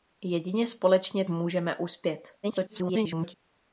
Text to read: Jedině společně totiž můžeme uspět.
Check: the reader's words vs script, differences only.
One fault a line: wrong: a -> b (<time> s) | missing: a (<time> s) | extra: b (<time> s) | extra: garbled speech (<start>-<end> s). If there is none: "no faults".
missing: totiž (1.2 s)
extra: garbled speech (2.4-3.3 s)